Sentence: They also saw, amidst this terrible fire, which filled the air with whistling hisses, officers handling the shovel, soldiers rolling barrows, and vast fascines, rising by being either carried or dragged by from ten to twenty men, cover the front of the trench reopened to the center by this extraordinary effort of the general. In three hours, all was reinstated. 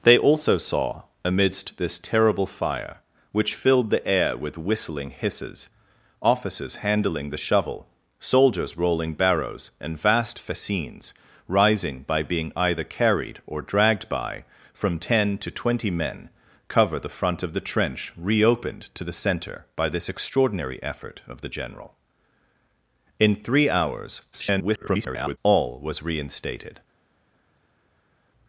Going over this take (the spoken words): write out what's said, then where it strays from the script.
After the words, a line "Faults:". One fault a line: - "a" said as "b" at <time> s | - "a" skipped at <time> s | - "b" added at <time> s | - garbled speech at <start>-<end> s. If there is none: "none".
They also saw, amidst this terrible fire, which filled the air with whistling hisses, officers handling the shovel, soldiers rolling barrows, and vast fascines, rising by being either carried or dragged by from ten to twenty men, cover the front of the trench reopened to the center by this extraordinary effort of the general. In three hours, [garbled] all was reinstated.
Faults:
- garbled speech at 24.3-25.4 s